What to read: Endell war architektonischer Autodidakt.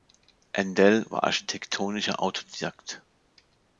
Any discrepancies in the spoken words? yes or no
no